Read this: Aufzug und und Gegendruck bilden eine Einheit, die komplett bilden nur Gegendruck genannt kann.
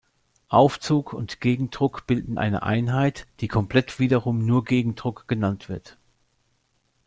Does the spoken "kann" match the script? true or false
false